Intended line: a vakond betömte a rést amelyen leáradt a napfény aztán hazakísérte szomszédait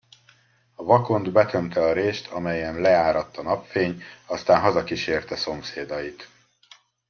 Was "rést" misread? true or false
false